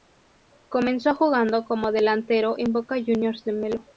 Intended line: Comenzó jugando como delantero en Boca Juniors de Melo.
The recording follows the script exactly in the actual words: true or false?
true